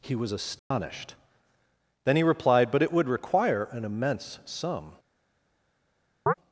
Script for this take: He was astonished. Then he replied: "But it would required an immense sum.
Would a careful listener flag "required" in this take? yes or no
yes